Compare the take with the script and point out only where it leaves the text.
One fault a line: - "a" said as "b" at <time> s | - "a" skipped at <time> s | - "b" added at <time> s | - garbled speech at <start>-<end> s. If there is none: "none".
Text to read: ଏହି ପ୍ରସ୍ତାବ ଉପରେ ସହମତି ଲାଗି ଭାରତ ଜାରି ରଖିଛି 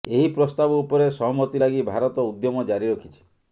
- "ଉଦ୍ୟମ" added at 2.3 s